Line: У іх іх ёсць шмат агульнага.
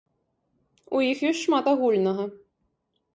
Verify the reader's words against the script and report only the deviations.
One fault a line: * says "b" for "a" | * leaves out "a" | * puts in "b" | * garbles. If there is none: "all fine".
* leaves out "іх"